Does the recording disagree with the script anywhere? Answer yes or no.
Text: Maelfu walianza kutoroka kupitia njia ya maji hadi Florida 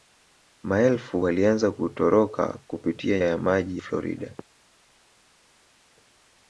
yes